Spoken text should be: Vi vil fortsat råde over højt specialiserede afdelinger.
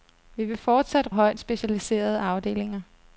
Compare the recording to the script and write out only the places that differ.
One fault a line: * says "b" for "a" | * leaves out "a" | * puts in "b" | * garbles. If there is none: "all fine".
* leaves out "råde over"